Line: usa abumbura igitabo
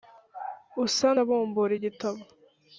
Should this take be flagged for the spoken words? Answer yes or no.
no